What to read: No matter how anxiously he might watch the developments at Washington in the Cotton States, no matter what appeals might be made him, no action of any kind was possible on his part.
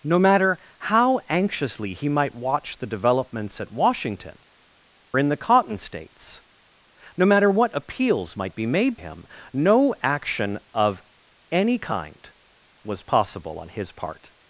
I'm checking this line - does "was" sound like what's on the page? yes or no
yes